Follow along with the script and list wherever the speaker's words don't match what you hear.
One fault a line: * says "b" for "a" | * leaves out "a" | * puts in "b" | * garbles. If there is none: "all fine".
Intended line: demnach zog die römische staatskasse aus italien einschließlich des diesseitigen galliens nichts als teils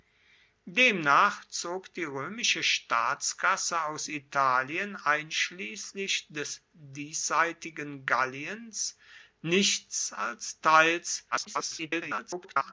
* garbles